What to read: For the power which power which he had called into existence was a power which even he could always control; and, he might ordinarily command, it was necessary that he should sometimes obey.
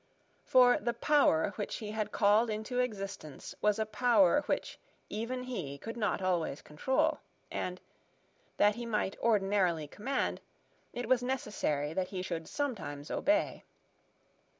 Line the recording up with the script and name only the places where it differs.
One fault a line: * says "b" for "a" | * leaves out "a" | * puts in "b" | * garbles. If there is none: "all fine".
* leaves out "power which"
* puts in "not"
* puts in "that"